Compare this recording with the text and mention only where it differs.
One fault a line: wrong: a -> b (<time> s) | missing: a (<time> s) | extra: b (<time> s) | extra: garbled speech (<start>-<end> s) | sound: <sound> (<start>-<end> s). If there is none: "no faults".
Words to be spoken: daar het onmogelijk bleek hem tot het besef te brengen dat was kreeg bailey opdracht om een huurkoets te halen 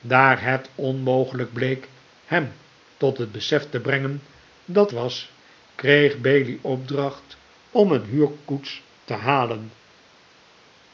no faults